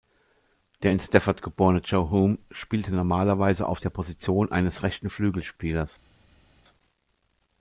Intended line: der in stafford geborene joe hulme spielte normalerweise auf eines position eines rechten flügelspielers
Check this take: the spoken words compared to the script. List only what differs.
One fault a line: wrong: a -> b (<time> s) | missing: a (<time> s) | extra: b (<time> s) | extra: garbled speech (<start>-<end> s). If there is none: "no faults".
wrong: eines -> der (3.8 s)